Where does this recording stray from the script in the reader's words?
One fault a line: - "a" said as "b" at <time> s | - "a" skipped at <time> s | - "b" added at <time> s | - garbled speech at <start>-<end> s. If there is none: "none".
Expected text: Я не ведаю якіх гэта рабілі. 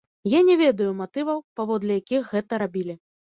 - "матываў паводле" added at 1.0 s